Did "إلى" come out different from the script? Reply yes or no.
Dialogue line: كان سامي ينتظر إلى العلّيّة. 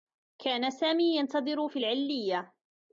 yes